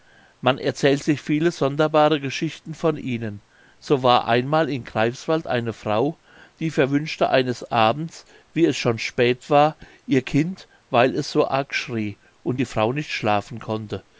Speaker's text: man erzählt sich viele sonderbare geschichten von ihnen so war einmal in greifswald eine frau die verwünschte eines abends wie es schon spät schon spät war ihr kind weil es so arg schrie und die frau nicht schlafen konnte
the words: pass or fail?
fail